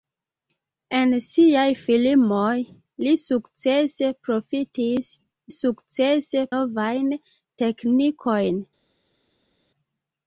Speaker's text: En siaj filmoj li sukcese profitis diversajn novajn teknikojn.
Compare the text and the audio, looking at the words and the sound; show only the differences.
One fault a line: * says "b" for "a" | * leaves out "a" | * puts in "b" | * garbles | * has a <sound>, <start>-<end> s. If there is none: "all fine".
* says "sukcese" for "diversajn"